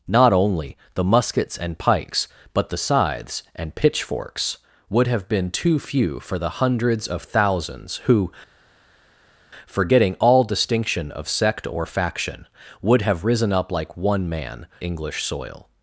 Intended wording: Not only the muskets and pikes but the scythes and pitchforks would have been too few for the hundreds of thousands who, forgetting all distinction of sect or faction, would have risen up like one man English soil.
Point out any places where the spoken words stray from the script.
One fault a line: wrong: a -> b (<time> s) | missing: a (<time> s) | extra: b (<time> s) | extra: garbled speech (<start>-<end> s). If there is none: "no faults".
no faults